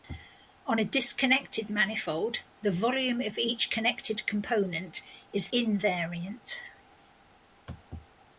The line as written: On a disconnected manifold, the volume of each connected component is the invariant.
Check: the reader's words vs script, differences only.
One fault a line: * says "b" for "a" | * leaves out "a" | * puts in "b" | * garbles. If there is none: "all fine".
* leaves out "the"